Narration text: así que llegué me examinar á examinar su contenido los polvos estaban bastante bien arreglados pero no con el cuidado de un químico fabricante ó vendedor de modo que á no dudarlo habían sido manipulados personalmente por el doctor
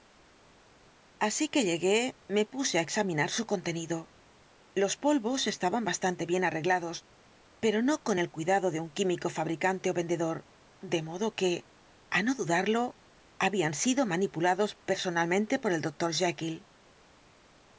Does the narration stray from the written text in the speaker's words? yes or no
yes